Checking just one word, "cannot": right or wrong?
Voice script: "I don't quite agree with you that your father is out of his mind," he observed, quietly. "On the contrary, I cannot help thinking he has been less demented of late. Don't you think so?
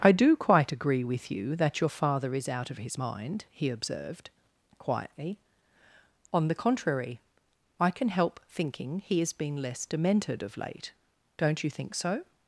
wrong